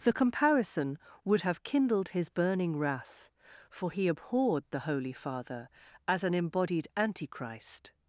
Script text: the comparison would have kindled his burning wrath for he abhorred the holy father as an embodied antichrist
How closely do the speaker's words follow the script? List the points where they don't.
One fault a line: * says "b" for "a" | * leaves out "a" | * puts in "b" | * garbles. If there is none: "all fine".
all fine